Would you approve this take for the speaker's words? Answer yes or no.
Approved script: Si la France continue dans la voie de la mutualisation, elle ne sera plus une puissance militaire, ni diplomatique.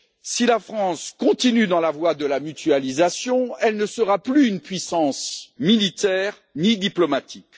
yes